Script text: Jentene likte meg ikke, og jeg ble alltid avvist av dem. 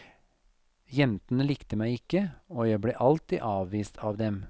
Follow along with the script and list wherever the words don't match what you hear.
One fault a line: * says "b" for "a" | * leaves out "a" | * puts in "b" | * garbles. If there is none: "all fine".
all fine